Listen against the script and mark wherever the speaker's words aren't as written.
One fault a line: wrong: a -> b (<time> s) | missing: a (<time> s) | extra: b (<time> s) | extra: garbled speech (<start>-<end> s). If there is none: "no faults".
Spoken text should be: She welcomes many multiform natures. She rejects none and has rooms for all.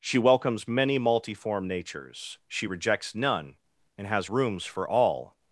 no faults